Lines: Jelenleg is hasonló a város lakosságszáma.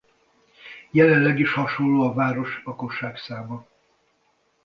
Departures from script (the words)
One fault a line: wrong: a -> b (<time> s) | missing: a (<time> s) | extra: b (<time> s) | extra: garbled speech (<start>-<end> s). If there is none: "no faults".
no faults